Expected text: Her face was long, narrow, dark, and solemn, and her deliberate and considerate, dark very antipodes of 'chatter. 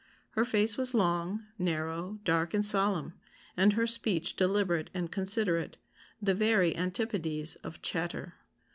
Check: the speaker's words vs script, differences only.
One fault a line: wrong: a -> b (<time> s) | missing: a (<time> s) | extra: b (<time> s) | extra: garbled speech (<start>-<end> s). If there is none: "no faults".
extra: speech (3.9 s)
wrong: dark -> the (6.2 s)